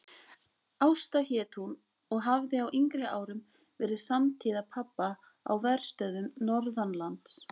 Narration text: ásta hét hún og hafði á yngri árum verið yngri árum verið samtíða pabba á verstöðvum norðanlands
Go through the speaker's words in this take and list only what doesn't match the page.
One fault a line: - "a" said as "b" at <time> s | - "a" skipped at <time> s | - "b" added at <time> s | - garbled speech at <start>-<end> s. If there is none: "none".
- "yngri árum verið" skipped at 4.0 s